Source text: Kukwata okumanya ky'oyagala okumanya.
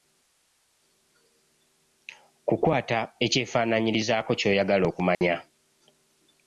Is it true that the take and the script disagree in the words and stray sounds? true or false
true